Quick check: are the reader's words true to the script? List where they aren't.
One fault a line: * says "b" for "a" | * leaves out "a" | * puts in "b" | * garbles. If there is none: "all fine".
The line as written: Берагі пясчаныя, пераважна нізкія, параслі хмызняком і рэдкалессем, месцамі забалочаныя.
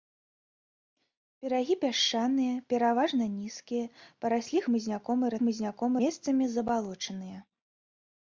* says "хмызняком" for "рэдкалессем"